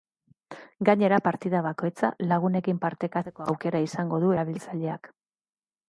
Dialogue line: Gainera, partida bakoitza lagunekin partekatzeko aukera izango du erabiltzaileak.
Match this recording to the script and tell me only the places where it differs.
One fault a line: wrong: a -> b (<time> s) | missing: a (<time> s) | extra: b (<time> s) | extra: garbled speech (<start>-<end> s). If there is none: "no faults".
no faults